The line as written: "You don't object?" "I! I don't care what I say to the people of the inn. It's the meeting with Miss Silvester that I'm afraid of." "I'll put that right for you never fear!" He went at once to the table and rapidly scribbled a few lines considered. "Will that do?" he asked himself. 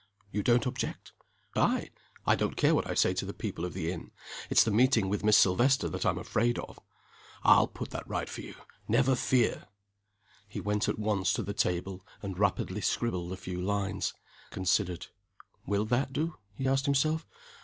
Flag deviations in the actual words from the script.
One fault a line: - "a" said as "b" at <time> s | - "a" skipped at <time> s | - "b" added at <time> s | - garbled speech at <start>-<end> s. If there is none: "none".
none